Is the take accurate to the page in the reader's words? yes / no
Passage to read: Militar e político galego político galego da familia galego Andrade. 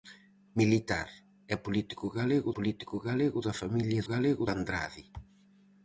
yes